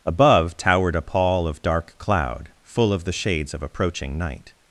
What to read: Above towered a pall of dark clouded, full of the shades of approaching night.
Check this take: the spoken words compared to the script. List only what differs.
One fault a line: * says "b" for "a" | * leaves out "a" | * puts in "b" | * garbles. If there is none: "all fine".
* says "cloud" for "clouded"